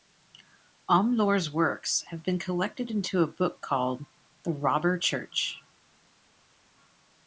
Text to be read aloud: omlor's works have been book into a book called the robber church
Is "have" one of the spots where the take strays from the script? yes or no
no